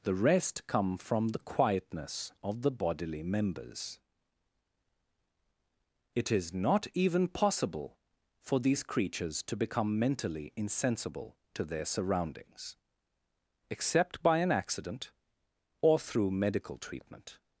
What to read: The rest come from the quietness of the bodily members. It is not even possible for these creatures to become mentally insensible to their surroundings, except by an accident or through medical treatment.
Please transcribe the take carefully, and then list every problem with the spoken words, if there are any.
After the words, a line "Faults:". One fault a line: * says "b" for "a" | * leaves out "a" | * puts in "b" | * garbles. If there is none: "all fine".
The rest come from the quietness of the bodily members. It is not even possible for these creatures to become mentally insensible to their surroundings, except by an accident or through medical treatment.
Faults:
all fine